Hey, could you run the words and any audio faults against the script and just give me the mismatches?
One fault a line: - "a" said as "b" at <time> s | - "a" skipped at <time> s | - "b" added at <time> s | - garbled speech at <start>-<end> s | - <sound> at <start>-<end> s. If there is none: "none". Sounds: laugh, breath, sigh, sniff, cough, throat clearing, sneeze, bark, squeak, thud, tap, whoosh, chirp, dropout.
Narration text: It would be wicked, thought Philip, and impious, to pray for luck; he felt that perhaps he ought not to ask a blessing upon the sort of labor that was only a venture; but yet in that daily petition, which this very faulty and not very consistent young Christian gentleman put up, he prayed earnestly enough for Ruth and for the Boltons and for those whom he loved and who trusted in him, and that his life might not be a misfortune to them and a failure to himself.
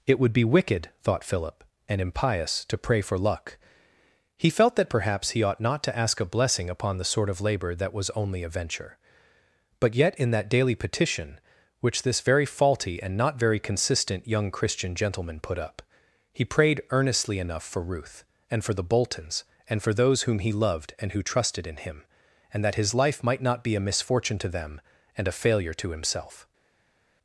none